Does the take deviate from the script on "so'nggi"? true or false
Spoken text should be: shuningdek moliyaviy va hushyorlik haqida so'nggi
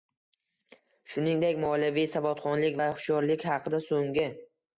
false